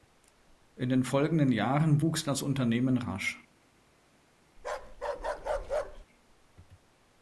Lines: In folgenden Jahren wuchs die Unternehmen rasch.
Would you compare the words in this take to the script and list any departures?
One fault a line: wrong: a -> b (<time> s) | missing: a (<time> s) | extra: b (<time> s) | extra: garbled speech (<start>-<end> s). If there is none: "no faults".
extra: den (0.9 s)
wrong: die -> das (2.2 s)